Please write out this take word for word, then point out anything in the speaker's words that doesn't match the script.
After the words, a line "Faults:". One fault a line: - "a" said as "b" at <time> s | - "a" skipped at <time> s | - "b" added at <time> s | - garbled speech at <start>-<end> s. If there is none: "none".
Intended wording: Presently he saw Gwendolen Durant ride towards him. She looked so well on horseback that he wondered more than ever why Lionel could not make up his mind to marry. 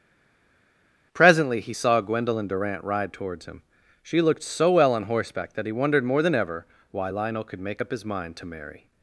Presently he saw Gwendolen Durant ride towards him. She looked so well on horseback that he wondered more than ever why Lionel could make up his mind to marry.
Faults:
- "not" skipped at 7.6 s